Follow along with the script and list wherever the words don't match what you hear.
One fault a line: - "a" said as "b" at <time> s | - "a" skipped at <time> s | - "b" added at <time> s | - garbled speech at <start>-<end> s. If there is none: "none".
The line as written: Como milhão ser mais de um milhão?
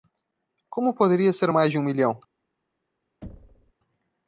- "milhão" said as "poderia" at 0.9 s